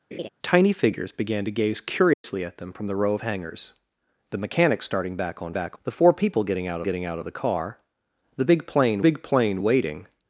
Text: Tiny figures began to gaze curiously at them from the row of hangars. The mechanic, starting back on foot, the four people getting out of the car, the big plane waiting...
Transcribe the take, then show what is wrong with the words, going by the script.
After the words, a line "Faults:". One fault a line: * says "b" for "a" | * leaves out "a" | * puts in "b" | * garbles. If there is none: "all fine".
Tiny figures began to gaze curiously at them from the row of hangars. The mechanic, starting back on back, the four people getting out getting out of the car, the big plane big plane waiting...
Faults:
* says "back" for "foot"
* puts in "getting out"
* puts in "big plane"